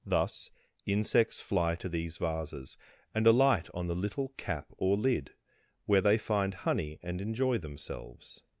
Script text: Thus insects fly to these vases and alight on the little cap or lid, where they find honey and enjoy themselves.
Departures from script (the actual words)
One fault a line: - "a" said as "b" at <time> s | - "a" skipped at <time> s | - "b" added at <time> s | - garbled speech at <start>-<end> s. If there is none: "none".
none